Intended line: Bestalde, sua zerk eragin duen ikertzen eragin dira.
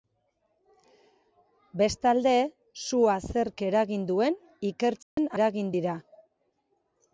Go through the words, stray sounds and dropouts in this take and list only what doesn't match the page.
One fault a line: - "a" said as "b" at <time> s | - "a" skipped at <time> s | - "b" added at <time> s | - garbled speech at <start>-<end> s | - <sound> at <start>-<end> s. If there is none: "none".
- dropout at 5.0-5.2 s